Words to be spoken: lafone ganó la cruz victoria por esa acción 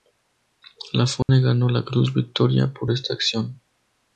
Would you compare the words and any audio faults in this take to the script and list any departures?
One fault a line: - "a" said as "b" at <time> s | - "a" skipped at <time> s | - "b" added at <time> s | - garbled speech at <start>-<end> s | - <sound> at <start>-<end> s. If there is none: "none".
- dropout at 1.2-1.3 s
- "esa" said as "esta" at 2.9 s